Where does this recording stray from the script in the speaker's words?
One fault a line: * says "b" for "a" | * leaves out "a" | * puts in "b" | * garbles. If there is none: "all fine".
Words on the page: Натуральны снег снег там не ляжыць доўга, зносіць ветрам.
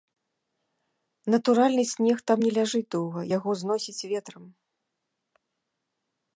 * leaves out "снег"
* puts in "яго"